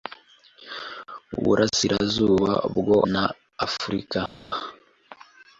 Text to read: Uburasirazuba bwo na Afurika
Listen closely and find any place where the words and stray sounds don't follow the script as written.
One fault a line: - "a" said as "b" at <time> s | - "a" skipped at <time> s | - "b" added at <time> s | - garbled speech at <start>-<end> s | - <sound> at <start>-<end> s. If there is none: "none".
none